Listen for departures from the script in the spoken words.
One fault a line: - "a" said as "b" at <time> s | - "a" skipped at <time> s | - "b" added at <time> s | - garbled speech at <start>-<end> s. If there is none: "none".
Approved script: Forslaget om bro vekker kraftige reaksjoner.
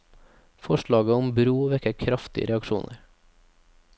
none